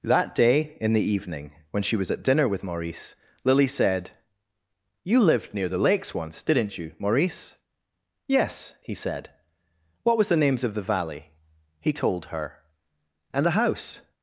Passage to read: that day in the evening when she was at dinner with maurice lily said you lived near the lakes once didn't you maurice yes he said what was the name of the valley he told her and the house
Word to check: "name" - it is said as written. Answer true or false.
false